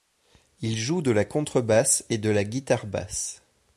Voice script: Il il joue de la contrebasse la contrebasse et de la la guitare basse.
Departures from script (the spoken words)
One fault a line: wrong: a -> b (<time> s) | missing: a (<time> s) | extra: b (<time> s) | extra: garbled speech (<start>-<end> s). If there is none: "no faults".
missing: il (0.8 s)
missing: la contrebasse (2.0 s)
missing: la (2.4 s)